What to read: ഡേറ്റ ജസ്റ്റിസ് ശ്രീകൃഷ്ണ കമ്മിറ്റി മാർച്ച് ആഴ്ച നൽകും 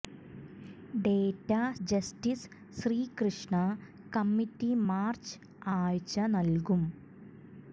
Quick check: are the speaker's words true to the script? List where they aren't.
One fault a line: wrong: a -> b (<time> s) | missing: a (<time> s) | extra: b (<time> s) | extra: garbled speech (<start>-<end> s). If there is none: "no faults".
no faults